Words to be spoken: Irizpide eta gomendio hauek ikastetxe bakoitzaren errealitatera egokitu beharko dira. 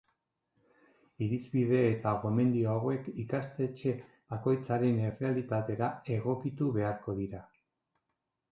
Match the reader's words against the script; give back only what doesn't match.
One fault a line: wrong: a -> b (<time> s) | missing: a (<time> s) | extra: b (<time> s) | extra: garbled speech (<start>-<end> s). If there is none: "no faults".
no faults